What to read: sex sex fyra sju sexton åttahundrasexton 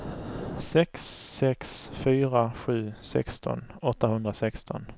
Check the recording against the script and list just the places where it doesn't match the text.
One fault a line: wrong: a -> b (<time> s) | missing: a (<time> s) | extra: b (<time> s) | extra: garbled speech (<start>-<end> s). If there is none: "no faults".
no faults